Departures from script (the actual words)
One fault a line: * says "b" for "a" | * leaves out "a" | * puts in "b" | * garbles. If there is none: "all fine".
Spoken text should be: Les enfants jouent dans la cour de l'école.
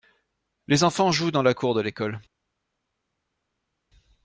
all fine